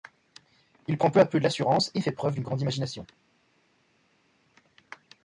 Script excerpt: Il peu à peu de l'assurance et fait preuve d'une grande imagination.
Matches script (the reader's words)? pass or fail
fail